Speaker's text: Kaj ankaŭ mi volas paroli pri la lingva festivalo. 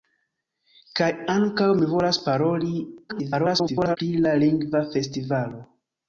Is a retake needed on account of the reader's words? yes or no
yes